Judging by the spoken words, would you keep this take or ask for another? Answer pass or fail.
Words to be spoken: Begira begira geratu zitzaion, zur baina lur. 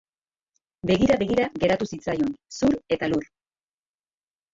fail